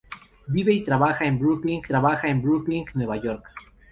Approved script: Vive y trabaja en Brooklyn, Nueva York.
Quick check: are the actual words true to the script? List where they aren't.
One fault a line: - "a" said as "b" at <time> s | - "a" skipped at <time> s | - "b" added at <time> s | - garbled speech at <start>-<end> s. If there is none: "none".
- "trabaja en Brooklyn" added at 1.9 s